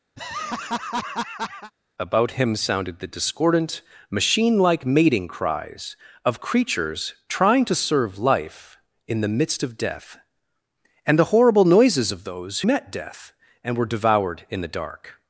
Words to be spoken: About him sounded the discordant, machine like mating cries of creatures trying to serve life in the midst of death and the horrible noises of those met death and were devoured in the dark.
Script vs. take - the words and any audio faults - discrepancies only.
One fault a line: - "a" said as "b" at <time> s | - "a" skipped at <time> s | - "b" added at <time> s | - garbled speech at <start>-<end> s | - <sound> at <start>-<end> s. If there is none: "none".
- laugh at 0.2-1.7 s